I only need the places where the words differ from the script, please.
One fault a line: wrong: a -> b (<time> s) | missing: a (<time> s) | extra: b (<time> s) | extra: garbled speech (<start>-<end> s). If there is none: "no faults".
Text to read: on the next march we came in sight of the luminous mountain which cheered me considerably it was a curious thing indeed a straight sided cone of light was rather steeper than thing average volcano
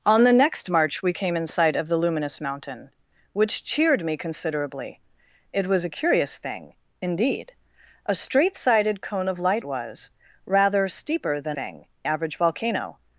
no faults